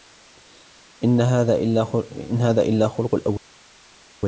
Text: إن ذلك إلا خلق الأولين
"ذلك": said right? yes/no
no